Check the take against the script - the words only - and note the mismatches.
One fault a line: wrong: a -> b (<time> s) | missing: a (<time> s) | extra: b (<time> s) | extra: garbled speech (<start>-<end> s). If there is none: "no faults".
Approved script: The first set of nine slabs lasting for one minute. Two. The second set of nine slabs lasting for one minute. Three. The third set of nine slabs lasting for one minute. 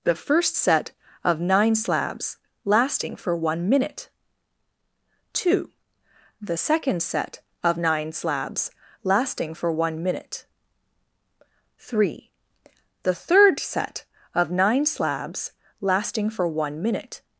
no faults